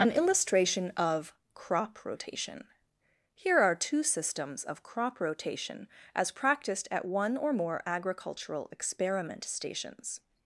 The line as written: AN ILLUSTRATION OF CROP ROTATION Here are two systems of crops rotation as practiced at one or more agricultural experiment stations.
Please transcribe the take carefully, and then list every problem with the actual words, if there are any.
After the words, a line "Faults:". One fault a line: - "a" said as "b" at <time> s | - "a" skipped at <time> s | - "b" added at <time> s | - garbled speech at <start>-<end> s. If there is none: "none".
AN ILLUSTRATION OF CROP ROTATION Here are two systems of crop rotation as practiced at one or more agricultural experiment stations.
Faults:
- "crops" said as "crop" at 4.8 s